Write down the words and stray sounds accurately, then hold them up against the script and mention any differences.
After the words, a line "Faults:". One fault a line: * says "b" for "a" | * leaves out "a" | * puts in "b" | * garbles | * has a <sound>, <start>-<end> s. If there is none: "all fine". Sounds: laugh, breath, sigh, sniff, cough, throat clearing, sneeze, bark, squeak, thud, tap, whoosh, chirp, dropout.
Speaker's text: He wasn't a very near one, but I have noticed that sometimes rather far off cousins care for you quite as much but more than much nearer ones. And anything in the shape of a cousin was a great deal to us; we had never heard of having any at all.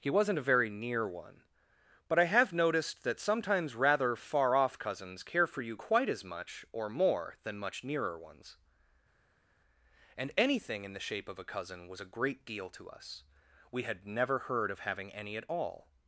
He wasn't a very near one, but I have noticed that sometimes rather far off cousins care for you quite as much or more than much nearer ones. And anything in the shape of a cousin was a great deal to us; we had never heard of having any at all.
Faults:
* says "or" for "but"